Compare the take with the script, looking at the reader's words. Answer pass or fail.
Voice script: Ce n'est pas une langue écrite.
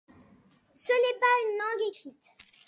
pass